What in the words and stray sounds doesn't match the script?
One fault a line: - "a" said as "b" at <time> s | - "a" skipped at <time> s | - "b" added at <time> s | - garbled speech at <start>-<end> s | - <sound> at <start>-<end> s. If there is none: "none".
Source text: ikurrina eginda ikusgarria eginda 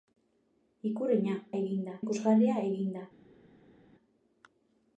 none